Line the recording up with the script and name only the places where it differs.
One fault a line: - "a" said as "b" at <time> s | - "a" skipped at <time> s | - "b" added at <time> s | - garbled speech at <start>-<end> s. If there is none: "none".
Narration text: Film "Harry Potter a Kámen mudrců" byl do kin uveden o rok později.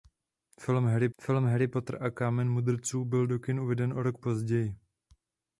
- "film Harry" added at 1.2 s